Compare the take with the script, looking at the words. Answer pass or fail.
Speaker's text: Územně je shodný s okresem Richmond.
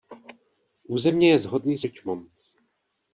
fail